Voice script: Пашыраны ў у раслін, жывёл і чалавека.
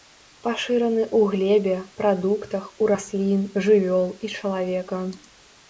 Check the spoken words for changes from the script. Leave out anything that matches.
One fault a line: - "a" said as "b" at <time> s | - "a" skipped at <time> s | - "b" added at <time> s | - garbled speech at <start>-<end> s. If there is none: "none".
- "глебе прадуктах" added at 1.3 s